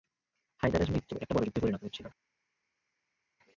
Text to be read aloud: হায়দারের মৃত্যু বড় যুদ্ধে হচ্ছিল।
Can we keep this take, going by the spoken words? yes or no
no